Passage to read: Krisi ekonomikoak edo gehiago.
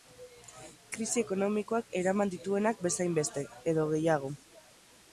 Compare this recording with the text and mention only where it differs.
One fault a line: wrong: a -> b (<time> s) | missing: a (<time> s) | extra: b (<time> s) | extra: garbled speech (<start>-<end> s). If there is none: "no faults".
extra: eraman dituenak bezainbeste (2.0 s)